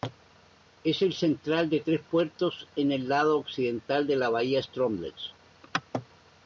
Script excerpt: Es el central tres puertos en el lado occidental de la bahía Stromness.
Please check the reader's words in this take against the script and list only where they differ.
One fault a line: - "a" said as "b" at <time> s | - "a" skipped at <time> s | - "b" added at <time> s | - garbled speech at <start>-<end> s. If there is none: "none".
- "de" added at 1.7 s